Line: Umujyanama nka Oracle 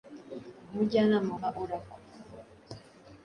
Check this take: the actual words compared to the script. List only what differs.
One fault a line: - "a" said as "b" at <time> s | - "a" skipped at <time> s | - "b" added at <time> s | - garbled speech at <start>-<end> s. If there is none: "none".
none